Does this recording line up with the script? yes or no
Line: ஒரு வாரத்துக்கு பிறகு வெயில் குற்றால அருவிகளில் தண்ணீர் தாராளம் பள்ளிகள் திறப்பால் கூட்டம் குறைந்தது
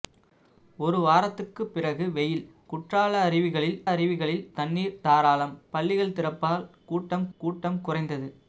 no